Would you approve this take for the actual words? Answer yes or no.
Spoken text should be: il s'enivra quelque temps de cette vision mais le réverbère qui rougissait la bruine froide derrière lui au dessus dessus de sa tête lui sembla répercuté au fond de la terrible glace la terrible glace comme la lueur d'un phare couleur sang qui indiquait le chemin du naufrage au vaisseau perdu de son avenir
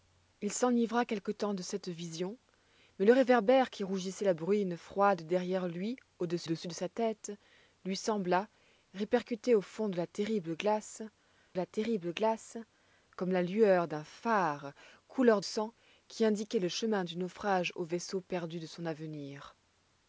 yes